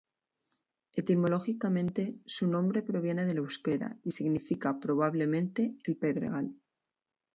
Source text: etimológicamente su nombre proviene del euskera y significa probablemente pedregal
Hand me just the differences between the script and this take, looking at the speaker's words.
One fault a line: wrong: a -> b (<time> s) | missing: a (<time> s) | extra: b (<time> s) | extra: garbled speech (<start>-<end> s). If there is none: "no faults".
extra: el (5.8 s)